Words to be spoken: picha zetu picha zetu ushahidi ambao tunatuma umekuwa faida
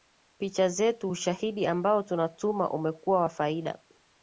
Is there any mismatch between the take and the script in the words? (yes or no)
yes